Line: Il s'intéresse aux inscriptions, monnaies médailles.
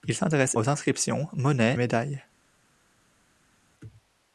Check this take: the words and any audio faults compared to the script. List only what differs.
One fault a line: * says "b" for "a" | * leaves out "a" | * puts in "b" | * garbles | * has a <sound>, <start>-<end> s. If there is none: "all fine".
all fine